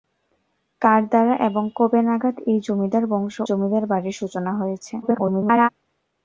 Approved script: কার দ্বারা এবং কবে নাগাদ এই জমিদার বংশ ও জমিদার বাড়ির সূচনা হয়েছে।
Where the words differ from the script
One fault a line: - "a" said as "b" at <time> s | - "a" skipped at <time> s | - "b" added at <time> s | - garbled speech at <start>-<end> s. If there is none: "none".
- "ও" skipped at 3.4 s
- garbled speech at 5.0-5.7 s